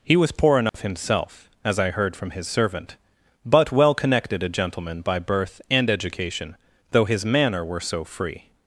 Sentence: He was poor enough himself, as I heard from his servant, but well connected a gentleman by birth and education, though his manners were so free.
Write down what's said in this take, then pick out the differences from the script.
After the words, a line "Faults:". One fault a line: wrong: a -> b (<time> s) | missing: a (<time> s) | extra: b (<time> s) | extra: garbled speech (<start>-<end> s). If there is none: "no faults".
He was poor enough himself, as I heard from his servant, but well connected a gentleman by birth and education, though his manner were so free.
Faults:
wrong: manners -> manner (7.3 s)